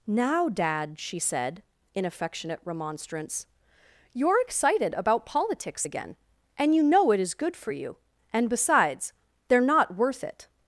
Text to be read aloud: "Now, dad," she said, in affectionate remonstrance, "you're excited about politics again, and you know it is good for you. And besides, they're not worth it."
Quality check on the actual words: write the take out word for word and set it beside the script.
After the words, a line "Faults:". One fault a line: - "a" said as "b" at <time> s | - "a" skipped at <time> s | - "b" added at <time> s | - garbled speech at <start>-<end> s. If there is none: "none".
"Now, dad," she said, in affectionate remonstrance, "you're excited about politics again, and you know it is good for you. And besides, they're not worth it."
Faults:
none